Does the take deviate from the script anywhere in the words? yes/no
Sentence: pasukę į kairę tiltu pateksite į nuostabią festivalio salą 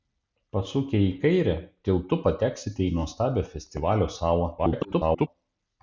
yes